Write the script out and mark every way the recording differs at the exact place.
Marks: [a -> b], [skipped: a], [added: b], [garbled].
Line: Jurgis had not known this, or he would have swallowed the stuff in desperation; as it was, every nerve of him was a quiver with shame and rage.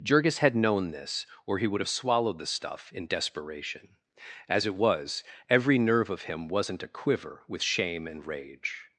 Jurgis had [skipped: not] known this, or he would have swallowed the stuff in desperation; as it was, every nerve of him [was -> wasn't] a quiver with shame and rage.